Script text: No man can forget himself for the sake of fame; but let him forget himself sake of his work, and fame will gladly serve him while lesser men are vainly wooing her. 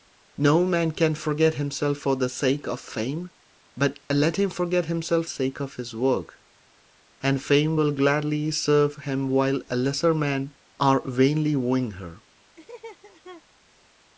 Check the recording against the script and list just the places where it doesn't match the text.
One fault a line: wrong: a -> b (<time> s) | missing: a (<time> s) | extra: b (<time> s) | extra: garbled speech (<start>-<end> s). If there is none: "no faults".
no faults